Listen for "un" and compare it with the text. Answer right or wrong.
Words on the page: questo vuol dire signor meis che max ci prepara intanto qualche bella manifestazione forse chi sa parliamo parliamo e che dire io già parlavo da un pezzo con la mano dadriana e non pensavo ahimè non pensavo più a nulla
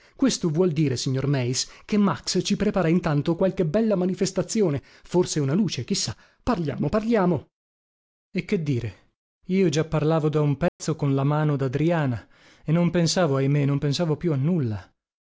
right